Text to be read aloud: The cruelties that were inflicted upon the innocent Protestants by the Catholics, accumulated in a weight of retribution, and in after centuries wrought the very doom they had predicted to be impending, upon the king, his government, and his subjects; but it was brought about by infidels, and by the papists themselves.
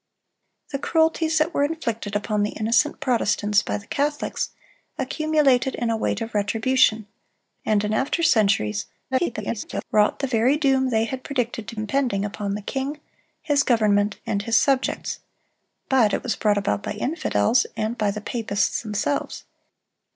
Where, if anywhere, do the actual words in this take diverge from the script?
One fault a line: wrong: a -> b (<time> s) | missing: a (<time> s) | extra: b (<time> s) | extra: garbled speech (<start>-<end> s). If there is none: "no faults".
extra: garbled speech (9.1-9.8 s)
missing: be (11.8 s)